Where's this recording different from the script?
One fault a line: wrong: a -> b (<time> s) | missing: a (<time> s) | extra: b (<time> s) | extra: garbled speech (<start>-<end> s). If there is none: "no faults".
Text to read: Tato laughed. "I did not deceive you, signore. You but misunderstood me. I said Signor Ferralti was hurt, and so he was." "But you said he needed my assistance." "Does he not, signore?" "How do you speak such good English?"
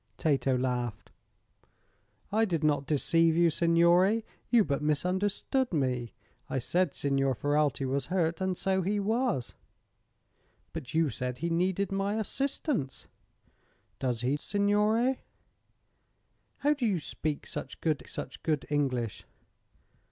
missing: not (14.4 s)
extra: such good (18.1 s)